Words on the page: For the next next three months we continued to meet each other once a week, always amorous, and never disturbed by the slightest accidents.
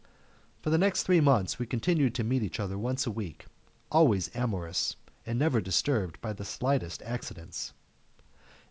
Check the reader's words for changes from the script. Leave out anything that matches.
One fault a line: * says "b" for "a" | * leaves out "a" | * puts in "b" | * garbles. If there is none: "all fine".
* leaves out "next"